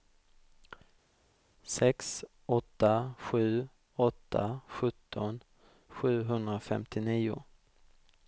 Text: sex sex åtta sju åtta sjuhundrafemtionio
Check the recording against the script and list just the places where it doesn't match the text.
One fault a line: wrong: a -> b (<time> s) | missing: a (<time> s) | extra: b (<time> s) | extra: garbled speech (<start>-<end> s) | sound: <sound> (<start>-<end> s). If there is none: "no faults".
missing: sex (2.2 s)
extra: sjutton (4.7 s)